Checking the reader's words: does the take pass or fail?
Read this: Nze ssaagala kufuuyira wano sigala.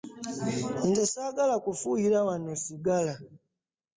pass